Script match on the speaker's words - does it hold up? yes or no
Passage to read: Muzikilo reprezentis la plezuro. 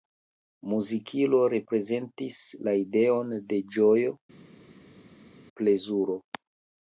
no